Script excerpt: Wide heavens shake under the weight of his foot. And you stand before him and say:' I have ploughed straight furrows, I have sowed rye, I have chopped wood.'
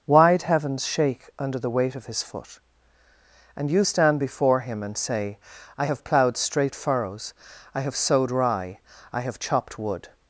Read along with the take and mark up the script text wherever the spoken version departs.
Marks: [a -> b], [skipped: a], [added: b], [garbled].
Wide heavens shake under the weight of his foot. And you stand before him and say:' I have ploughed straight furrows, I have sowed rye, I have chopped wood.'